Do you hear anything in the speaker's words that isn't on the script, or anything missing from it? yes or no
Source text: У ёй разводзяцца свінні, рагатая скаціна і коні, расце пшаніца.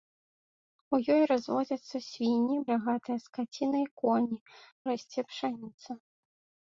no